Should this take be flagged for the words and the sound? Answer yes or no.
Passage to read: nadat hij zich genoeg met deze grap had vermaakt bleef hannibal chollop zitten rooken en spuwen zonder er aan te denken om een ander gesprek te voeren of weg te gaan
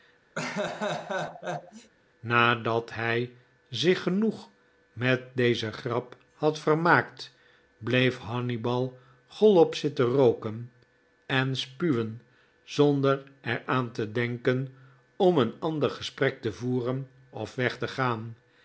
yes